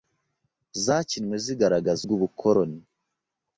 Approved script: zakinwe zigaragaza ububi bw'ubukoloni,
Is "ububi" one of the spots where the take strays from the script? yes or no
yes